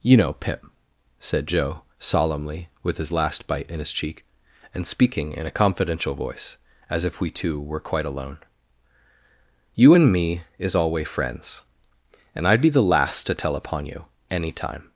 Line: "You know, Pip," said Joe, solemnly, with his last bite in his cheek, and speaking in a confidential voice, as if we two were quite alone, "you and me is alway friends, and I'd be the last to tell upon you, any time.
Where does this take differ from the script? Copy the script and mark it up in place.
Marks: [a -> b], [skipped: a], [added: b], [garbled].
"You know, Pip," said Joe, solemnly, with his last bite in his cheek, and speaking in a confidential voice, as if we two were quite alone, "you and me is alway friends, and I'd be the last to tell upon you, any time.